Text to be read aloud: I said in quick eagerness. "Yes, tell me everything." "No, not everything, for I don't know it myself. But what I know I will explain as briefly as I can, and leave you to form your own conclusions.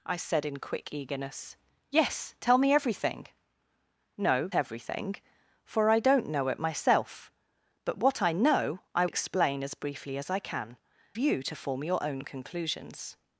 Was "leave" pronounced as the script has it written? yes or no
no